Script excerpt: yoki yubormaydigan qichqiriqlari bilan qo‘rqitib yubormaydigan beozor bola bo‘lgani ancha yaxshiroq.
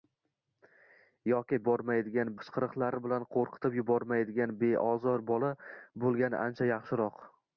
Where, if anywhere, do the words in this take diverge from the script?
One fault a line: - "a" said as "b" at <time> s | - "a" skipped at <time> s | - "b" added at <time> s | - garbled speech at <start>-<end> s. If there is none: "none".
none